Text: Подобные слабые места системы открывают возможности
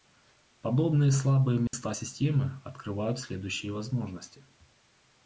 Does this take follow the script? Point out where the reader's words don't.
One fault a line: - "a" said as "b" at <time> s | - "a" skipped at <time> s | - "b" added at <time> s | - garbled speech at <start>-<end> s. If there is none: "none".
- "следующие" added at 3.2 s